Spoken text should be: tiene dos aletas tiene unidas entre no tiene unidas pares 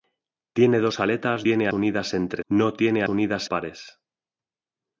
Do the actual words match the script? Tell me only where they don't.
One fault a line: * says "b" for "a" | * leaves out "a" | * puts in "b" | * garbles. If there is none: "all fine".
all fine